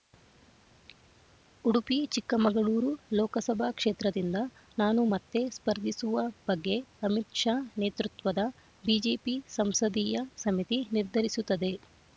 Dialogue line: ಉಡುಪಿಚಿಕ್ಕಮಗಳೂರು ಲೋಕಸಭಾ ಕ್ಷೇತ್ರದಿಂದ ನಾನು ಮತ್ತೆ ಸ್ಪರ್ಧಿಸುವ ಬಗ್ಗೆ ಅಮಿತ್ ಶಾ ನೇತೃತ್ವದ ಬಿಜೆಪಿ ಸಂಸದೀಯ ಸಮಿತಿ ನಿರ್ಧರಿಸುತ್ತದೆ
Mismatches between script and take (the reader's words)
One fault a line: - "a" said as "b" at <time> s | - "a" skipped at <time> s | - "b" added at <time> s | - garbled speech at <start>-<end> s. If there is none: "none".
none